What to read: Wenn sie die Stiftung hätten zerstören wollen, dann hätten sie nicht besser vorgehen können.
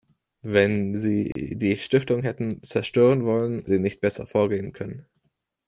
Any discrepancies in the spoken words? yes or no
yes